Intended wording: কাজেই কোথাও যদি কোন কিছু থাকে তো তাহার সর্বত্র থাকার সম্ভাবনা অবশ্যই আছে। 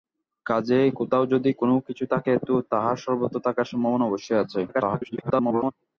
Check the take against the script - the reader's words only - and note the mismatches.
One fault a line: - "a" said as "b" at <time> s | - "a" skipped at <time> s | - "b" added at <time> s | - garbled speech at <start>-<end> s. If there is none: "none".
- garbled speech at 4.7-5.7 s